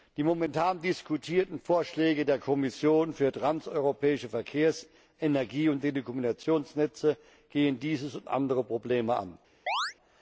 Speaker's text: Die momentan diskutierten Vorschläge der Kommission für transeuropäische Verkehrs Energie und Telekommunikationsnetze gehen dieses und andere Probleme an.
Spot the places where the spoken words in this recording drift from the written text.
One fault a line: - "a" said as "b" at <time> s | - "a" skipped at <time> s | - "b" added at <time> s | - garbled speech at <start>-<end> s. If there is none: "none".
none